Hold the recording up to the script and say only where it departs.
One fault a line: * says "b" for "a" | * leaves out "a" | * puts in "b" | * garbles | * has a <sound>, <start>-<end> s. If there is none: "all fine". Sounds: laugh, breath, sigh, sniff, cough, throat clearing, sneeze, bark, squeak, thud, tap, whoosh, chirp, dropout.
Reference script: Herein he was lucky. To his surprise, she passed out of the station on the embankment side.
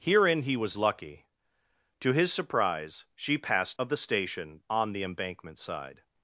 * leaves out "out"